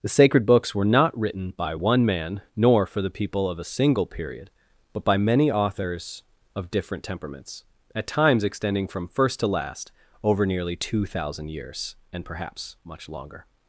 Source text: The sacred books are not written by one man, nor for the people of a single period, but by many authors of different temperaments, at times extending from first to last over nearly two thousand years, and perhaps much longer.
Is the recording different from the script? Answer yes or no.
yes